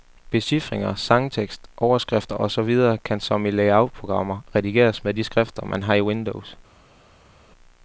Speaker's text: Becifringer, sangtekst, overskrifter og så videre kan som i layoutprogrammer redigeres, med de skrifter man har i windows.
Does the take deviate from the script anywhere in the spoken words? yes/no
no